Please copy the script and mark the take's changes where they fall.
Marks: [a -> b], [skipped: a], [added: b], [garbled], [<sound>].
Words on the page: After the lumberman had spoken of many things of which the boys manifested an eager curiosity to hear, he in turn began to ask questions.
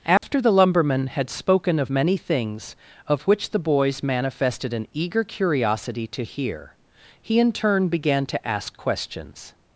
After [dropout] the lumberman had spoken of many things of which the boys manifested an eager curiosity to hear, he in turn began to ask questions.